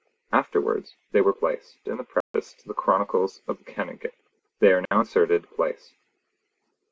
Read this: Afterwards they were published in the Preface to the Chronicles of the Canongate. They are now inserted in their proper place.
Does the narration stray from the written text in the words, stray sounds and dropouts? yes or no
yes